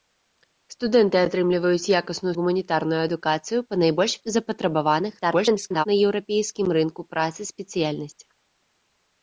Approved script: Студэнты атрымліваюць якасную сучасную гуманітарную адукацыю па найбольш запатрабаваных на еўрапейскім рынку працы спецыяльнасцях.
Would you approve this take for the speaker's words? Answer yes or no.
no